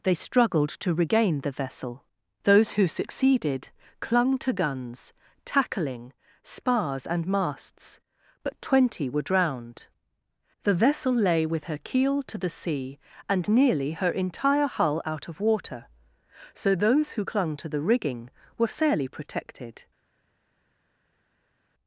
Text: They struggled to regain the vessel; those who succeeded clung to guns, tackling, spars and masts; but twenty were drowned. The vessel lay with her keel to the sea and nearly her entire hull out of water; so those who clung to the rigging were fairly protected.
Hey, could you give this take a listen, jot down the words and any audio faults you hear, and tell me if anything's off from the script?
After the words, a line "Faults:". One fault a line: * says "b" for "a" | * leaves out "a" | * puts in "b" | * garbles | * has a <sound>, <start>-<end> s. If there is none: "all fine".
They struggled to regain the vessel; those who succeeded clung to guns, tackling, spars and masts; but twenty were drowned. The vessel lay with her keel to the sea and nearly her entire hull out of water; so those who clung to the rigging were fairly protected.
Faults:
all fine